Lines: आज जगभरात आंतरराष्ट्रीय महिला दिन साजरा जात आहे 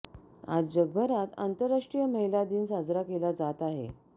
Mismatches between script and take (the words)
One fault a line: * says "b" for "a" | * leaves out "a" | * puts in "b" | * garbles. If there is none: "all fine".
* puts in "केला"